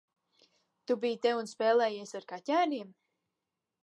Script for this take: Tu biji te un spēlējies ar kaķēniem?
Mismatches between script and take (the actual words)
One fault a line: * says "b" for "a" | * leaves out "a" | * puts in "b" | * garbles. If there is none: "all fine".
all fine